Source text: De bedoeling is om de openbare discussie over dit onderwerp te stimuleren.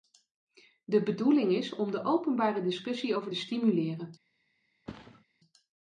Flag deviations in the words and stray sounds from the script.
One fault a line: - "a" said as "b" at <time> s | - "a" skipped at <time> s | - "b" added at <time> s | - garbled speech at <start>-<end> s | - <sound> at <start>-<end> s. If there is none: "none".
- "dit onderwerp te" skipped at 3.3 s
- thud at 4.9-5.2 s